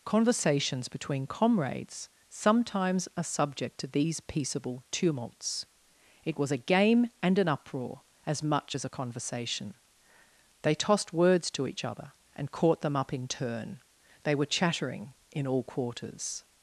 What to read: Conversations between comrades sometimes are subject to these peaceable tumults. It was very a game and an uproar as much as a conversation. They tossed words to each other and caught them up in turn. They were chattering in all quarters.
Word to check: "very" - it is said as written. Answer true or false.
false